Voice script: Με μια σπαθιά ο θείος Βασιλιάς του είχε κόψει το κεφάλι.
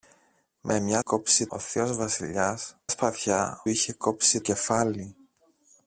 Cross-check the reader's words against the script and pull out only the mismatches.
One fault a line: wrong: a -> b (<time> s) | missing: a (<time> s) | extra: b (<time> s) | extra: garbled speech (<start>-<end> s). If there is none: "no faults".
wrong: σπαθιά -> κόψει (1.0 s)
wrong: του -> σπαθιά (2.9 s)
missing: το (4.4 s)